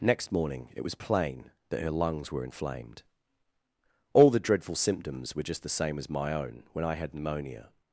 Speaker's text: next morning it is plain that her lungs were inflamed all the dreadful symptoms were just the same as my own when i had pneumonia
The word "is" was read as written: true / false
false